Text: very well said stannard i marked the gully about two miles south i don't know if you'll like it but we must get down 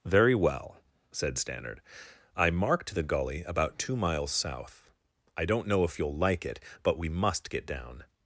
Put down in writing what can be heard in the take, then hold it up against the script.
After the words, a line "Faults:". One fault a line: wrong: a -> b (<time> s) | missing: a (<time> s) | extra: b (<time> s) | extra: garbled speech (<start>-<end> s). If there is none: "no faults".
very well said stannard i marked the gully about two miles south i don't know if you'll like it but we must get down
Faults:
no faults